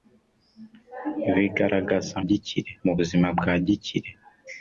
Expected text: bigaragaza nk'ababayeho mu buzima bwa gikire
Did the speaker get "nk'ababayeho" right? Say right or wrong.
wrong